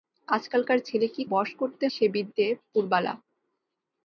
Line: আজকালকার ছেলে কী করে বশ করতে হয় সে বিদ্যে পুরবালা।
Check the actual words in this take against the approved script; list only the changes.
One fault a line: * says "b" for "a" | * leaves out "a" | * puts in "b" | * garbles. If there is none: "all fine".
* leaves out "করে"
* leaves out "হয়"